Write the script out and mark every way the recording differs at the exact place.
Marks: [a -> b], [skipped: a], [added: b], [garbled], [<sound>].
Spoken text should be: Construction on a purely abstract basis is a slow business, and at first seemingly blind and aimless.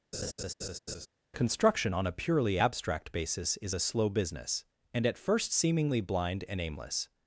[laugh] Construction on a purely abstract basis is a slow business, and at first seemingly blind and aimless.